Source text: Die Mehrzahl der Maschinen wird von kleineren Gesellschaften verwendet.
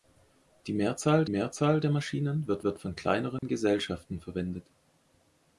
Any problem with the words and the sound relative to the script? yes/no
yes